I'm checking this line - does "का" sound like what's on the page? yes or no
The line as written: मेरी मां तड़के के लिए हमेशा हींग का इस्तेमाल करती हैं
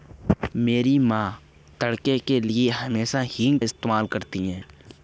no